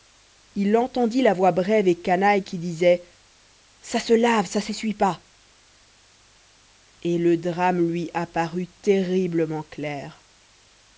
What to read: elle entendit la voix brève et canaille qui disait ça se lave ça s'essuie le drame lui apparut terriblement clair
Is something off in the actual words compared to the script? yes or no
yes